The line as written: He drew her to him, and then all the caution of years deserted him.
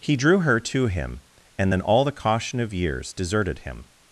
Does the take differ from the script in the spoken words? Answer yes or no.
no